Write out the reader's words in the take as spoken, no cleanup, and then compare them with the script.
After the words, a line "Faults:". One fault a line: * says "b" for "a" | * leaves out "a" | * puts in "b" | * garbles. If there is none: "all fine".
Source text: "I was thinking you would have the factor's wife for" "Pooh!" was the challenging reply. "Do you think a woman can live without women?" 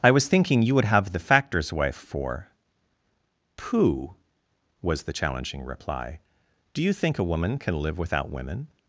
"I was thinking you would have the factor's wife for" "Pooh!" was the challenging reply. "Do you think a woman can live without women?"
Faults:
all fine